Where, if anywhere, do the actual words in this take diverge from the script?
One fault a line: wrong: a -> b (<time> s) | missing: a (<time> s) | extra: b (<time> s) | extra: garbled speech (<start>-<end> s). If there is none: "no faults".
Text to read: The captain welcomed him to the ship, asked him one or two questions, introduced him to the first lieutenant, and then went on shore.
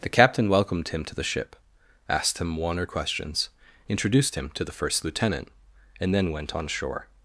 missing: two (2.9 s)